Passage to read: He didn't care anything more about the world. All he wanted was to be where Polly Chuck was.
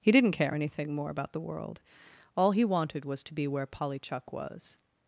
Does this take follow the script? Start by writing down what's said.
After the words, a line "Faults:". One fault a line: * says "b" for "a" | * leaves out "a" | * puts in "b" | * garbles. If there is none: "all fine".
He didn't care anything more about the world. All he wanted was to be where Polly Chuck was.
Faults:
all fine